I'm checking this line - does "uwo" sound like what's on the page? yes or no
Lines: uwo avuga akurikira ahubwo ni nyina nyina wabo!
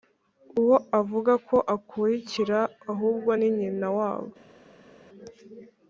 yes